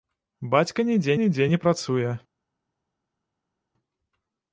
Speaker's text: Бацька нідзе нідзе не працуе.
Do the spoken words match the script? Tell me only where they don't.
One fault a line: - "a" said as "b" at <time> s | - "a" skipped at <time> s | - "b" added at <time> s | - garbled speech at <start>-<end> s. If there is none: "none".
none